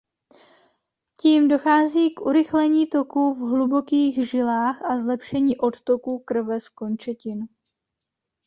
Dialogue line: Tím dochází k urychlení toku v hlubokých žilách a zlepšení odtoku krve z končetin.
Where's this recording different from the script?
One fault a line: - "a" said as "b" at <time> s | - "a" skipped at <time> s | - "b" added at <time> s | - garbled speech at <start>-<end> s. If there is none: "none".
none